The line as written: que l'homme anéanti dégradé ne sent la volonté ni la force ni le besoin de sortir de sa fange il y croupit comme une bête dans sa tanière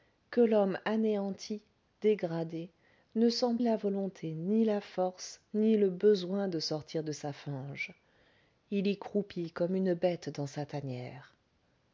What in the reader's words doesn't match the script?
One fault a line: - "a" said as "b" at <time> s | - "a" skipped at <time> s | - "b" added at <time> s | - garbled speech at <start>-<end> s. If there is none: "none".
none